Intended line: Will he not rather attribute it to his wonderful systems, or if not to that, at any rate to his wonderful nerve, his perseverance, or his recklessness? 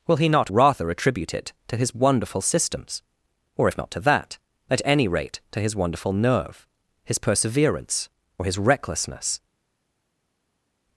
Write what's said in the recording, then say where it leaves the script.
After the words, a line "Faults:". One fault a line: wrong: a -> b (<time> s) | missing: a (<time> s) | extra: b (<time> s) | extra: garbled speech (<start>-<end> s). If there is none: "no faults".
Will he not rather attribute it to his wonderful systems, or if not to that, at any rate to his wonderful nerve, his perseverance, or his recklessness?
Faults:
no faults